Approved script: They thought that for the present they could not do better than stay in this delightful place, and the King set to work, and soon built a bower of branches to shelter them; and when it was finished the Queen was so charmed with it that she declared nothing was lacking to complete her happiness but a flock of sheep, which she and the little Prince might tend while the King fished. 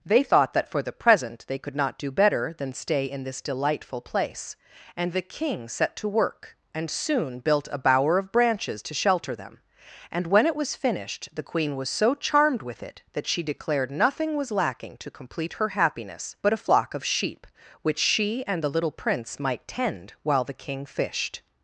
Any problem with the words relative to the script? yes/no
no